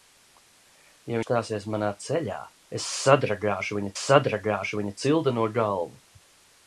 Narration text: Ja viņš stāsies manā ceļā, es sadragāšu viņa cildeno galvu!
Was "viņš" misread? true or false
true